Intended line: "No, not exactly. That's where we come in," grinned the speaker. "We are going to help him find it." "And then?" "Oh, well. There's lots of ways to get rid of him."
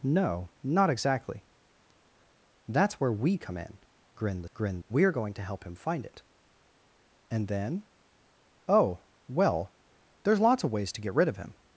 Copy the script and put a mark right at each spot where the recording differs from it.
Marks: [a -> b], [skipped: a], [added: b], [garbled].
"No, not exactly. That's where we come in," grinned the [speaker. -> grinned] "We are going to help him find it." "And then?" "Oh, well. There's lots of ways to get rid of him."